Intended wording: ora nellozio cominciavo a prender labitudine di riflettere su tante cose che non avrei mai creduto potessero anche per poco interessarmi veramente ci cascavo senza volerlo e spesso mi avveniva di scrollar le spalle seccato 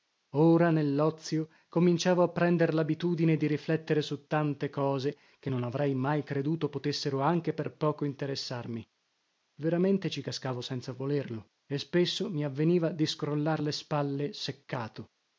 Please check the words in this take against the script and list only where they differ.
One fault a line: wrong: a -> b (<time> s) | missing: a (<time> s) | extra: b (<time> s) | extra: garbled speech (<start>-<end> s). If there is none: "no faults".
no faults